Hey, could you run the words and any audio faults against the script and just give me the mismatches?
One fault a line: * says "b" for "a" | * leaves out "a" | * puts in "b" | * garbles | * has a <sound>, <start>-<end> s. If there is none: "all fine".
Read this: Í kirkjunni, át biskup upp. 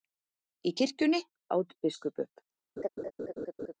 * has a laugh, 2.8-3.7 s